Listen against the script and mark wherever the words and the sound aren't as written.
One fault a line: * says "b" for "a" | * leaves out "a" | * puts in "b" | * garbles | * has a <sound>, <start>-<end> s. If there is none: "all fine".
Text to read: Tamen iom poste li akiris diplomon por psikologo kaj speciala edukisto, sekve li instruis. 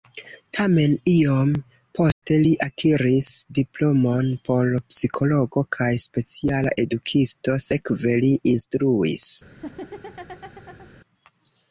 * has a dropout, 2.1-2.2 s
* has a laugh, 9.5-10.9 s